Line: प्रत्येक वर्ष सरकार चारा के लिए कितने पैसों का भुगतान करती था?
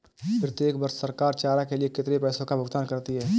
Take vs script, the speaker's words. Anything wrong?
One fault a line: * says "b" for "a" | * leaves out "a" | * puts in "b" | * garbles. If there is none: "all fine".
* says "है" for "था"